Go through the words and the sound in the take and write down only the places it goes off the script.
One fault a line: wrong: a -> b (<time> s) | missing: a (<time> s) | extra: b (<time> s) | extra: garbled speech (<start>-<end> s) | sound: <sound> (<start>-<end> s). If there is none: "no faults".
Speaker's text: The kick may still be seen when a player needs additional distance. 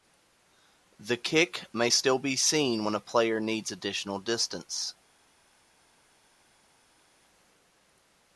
no faults